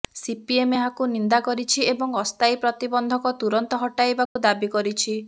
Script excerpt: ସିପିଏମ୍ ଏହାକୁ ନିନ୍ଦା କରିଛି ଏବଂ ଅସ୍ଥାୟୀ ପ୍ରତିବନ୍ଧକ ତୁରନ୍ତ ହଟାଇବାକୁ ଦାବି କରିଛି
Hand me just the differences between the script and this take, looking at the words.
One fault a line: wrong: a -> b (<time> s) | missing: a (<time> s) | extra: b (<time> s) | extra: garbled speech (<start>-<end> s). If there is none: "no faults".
no faults